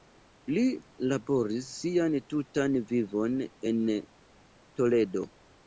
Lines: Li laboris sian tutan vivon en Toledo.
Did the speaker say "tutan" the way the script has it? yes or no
yes